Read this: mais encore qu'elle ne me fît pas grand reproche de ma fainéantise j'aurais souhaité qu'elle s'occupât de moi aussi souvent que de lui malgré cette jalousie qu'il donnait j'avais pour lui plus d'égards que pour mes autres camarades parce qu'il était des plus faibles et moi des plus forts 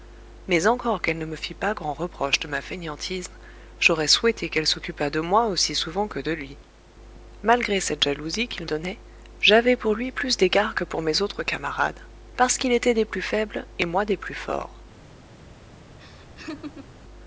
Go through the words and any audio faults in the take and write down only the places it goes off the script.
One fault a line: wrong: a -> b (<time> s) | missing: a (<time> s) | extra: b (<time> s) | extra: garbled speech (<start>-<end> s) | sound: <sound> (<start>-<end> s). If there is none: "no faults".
sound: laugh (16.0-17.0 s)